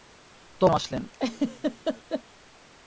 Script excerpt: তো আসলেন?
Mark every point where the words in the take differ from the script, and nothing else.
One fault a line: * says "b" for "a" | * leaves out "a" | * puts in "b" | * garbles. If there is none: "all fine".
all fine